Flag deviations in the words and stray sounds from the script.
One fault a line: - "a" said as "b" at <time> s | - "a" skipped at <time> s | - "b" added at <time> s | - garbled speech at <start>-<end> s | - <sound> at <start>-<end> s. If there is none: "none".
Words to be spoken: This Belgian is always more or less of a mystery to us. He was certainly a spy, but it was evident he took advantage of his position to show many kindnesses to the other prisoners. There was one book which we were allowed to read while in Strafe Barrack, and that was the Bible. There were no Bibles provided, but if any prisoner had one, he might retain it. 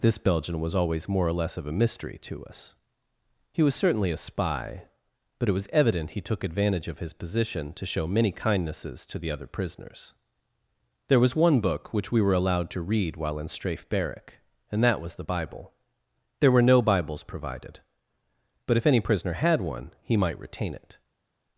- "is" said as "was" at 0.6 s